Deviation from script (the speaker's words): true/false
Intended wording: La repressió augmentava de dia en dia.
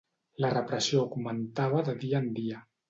false